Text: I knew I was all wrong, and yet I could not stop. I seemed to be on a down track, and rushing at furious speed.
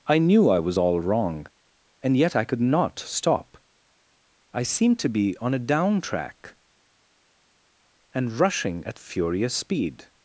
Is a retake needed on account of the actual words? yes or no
no